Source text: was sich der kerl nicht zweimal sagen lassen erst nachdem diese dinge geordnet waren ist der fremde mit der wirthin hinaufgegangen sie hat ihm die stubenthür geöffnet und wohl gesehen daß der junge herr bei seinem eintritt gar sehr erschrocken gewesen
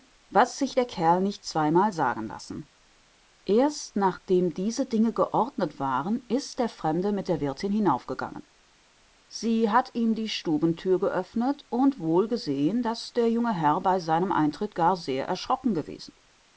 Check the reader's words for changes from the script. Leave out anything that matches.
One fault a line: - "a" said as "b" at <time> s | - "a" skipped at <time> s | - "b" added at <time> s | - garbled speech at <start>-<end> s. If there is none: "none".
none